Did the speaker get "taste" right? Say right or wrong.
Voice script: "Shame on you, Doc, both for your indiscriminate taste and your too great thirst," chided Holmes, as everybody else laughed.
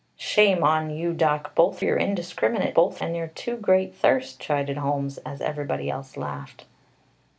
wrong